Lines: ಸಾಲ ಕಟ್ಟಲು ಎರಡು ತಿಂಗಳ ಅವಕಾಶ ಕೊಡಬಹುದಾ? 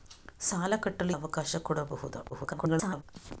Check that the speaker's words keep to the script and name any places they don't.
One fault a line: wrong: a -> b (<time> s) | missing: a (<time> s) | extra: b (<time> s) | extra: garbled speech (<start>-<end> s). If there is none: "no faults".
missing: ಎರಡು ತಿಂಗಳ (1.1 s)
extra: garbled speech (2.3-3.0 s)